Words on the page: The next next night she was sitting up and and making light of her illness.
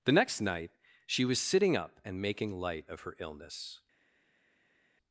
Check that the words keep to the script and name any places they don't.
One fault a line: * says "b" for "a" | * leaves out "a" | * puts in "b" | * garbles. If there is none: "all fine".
* leaves out "next"
* leaves out "and"